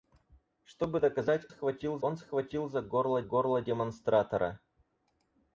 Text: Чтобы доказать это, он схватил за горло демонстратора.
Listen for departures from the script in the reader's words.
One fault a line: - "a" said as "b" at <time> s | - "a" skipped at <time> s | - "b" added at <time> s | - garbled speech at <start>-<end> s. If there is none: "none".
- "это" said as "схватил" at 1.5 s
- "горло" added at 3.2 s